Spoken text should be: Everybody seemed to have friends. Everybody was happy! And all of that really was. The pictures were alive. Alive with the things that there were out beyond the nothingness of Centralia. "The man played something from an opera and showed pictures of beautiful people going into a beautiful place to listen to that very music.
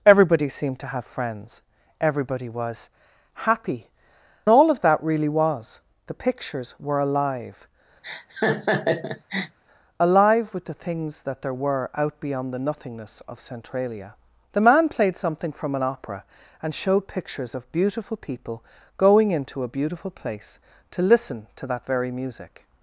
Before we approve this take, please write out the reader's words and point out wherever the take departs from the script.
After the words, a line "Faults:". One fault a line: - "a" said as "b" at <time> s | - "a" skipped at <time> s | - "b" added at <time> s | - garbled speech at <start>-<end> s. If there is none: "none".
Everybody seemed to have friends. Everybody was happy! All of that really was. The pictures were alive. Alive with the things that there were out beyond the nothingness of Centralia. "The man played something from an opera and showed pictures of beautiful people going into a beautiful place to listen to that very music.
Faults:
- "And" skipped at 3.9 s